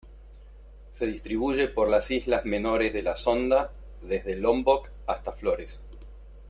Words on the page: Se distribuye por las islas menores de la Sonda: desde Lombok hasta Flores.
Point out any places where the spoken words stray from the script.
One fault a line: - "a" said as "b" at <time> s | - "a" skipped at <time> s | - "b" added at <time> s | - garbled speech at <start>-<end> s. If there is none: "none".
none